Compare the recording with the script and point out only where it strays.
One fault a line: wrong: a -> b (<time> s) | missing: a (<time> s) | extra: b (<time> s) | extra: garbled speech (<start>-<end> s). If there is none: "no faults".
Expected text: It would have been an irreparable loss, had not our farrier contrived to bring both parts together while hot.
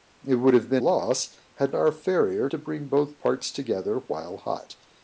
missing: an irreparable (0.8 s)
missing: not (1.7 s)
missing: contrived (2.5 s)